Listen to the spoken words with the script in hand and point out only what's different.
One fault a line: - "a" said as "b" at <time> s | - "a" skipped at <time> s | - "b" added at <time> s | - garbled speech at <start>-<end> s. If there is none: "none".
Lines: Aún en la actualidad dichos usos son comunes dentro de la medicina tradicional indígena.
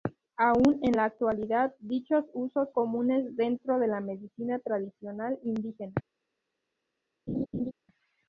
- "son" skipped at 2.7 s